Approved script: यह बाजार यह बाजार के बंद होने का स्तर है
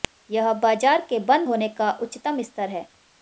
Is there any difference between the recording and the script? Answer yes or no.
yes